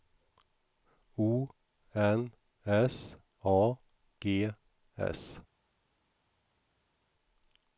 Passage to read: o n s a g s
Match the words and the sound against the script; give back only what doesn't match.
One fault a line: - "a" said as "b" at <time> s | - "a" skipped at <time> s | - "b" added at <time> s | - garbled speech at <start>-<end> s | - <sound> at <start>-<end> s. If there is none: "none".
none